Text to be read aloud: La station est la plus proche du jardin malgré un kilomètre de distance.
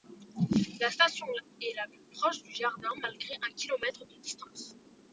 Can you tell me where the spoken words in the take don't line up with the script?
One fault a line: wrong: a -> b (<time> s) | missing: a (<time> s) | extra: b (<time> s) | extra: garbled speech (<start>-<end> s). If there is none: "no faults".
no faults